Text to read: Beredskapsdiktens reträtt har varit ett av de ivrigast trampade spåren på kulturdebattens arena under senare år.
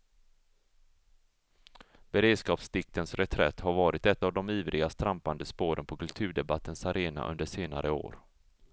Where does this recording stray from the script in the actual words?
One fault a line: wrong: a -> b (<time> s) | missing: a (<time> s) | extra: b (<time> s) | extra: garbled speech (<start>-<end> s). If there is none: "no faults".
no faults